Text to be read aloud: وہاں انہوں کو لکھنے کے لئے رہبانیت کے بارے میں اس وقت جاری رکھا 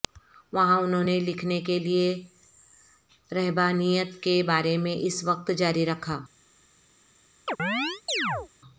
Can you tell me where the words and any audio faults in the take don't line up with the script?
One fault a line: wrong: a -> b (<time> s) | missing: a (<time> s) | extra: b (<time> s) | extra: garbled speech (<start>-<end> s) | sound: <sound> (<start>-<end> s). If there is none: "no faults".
wrong: کو -> نے (1.0 s)
sound: chirp (7.5-8.5 s)